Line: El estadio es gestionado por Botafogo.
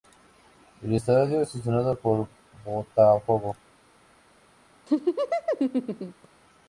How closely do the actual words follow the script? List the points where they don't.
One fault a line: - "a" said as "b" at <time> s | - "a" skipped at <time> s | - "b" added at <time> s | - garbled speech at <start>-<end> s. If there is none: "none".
none